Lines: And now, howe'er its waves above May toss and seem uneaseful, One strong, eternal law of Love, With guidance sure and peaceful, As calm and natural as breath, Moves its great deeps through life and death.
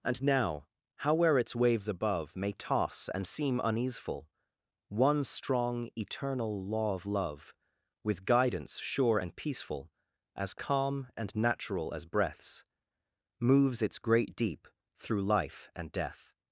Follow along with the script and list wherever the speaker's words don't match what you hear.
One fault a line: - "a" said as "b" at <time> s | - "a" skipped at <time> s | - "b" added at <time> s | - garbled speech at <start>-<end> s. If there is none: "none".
- "breath" said as "breaths" at 12.1 s
- "deeps" said as "deep" at 14.4 s